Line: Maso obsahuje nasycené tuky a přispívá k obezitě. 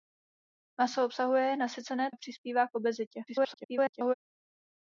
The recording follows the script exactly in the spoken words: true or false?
false